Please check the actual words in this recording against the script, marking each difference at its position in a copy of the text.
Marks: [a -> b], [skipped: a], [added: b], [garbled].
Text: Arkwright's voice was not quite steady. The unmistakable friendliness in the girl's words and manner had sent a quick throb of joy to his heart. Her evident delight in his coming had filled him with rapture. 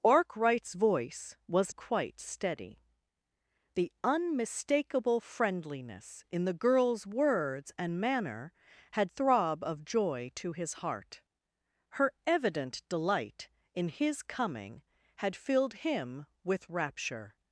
Arkwright's voice was [skipped: not] quite steady. The unmistakable friendliness in the girl's words and manner had [skipped: sent a quick] throb of joy to his heart. Her evident delight in his coming had filled him with rapture.